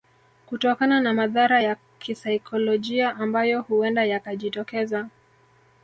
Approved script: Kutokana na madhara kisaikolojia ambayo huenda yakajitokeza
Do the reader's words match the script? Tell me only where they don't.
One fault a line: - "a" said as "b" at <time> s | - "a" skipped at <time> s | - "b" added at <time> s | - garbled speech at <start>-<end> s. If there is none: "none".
- "ya" added at 1.6 s